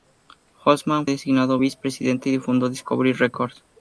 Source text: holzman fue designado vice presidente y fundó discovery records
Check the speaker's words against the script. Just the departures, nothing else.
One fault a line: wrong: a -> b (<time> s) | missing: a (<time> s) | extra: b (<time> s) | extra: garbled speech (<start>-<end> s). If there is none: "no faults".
missing: fue (1.1 s)